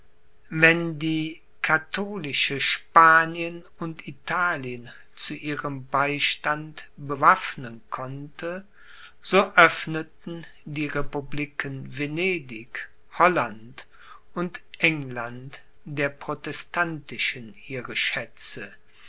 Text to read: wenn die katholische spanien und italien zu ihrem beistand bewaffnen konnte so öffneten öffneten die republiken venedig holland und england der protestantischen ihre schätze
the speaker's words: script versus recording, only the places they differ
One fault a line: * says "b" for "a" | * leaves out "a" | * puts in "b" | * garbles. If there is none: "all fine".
* leaves out "öffneten"